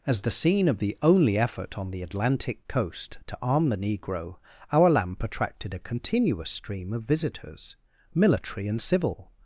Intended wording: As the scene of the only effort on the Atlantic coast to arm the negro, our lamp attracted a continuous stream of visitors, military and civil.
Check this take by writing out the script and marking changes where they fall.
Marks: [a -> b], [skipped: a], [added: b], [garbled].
As the scene of the only effort on the Atlantic coast to arm the negro, our lamp attracted a continuous stream of visitors, military and civil.